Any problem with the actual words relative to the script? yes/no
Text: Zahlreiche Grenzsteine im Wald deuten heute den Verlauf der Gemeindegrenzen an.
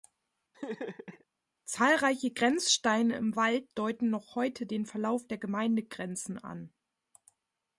yes